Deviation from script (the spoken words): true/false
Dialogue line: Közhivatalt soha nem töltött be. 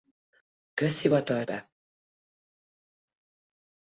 true